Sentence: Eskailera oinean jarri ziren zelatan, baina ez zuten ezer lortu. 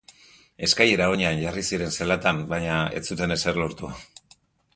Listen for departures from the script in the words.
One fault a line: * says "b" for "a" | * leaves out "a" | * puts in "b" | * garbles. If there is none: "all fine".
all fine